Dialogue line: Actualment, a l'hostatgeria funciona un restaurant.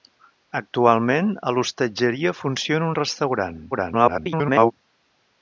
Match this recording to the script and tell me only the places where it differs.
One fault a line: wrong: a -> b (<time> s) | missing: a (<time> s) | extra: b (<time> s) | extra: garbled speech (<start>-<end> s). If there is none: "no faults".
extra: garbled speech (3.7-4.7 s)